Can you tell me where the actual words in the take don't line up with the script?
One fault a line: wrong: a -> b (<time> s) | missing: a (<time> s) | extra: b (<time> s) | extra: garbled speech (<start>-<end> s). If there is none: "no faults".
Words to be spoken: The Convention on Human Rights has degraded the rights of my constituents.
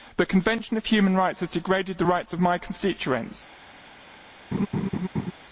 no faults